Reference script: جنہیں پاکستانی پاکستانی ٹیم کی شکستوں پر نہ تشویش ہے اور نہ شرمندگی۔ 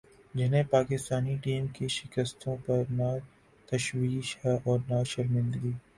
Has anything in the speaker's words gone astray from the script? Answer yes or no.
yes